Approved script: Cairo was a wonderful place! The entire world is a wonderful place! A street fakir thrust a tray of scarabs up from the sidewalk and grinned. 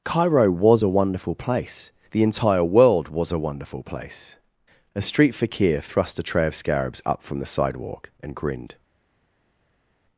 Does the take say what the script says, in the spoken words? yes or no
no